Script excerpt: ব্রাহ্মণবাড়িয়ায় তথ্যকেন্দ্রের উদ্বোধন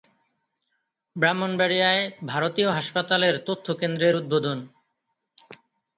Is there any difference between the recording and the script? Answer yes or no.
yes